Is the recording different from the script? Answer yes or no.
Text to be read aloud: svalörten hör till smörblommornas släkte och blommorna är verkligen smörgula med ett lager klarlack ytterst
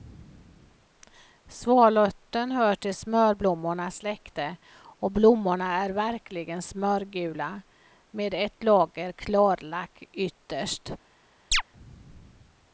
no